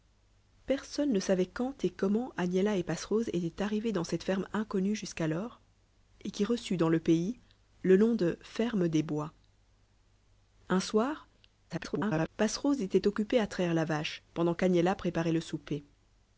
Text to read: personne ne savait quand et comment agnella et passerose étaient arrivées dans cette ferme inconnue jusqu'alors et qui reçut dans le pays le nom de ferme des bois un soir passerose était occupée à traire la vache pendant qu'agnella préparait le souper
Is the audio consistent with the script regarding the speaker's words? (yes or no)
no